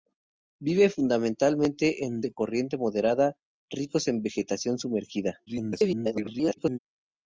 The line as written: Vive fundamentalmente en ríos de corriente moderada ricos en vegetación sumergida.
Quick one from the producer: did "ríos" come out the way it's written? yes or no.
no